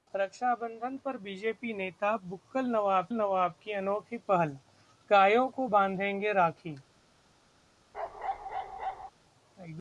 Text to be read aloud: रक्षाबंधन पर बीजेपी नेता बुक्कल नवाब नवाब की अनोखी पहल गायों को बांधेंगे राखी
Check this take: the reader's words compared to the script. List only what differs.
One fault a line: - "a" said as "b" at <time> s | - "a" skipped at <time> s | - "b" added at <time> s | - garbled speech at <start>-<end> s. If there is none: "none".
none